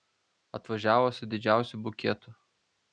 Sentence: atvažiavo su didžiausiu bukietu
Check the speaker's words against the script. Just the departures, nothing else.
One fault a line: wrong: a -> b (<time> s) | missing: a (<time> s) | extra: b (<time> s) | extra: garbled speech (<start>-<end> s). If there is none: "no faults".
no faults